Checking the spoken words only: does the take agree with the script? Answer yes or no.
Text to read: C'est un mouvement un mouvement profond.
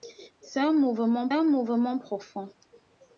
yes